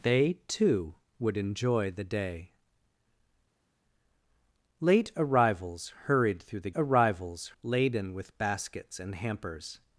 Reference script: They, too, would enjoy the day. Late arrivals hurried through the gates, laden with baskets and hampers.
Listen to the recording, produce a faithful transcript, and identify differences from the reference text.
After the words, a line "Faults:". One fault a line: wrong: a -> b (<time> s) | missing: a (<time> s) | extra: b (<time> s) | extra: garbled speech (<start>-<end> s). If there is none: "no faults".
They, too, would enjoy the day. Late arrivals hurried through the arrivals, laden with baskets and hampers.
Faults:
wrong: gates -> arrivals (6.7 s)